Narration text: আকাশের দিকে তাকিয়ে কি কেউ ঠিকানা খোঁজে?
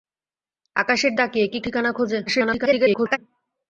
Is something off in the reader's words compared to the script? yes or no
yes